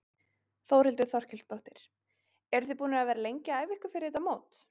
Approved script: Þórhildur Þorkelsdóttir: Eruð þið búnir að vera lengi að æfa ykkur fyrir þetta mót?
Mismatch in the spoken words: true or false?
false